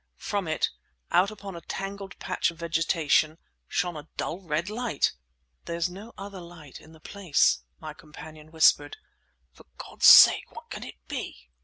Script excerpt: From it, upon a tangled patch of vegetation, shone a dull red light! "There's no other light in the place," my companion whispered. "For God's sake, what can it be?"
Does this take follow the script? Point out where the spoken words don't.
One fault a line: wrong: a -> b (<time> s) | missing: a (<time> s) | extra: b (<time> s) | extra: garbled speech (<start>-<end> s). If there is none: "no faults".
extra: out (1.1 s)